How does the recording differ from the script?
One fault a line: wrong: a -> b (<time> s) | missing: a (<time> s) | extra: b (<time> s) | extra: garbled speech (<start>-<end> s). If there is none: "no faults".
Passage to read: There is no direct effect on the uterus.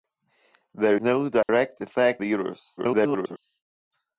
missing: is (0.9 s)
missing: on (2.2 s)
extra: garbled speech (2.8-3.4 s)